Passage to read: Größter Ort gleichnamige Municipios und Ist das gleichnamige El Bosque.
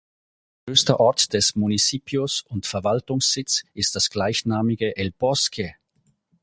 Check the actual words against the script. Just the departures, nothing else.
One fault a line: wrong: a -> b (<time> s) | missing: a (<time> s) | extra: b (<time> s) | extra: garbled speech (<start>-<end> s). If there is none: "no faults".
wrong: gleichnamige -> des (1.3 s)
extra: Verwaltungssitz (2.6 s)